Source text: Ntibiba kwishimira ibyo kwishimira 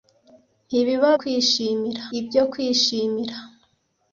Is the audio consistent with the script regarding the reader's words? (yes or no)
yes